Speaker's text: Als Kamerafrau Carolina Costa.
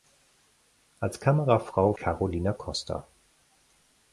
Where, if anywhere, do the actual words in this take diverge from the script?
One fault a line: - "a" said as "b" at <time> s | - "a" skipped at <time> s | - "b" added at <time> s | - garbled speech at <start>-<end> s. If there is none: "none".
none